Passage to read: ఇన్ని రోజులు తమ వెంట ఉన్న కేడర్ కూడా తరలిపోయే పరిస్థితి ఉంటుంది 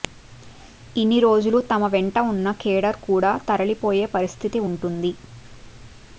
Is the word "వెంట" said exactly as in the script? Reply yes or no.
yes